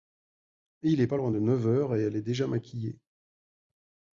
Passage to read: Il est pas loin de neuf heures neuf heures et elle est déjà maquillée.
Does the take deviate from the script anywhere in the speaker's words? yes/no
yes